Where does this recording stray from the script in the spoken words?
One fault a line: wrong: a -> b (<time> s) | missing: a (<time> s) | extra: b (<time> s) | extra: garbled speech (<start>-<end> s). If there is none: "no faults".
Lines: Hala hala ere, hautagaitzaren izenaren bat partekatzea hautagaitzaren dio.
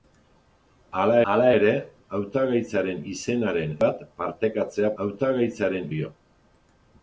no faults